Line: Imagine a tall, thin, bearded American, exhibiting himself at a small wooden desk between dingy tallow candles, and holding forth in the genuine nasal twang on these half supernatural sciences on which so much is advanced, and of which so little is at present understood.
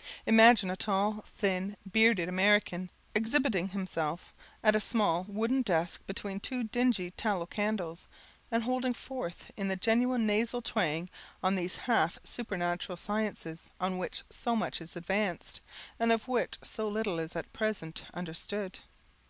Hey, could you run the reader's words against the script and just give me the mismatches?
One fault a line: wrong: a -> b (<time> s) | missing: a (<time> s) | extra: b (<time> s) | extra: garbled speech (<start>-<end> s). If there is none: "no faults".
extra: two (6.4 s)